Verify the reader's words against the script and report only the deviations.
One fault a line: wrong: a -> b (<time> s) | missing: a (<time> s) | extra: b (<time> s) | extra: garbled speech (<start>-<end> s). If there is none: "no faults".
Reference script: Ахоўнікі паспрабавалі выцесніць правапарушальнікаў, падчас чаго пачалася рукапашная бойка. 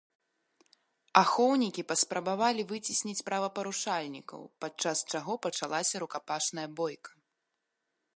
no faults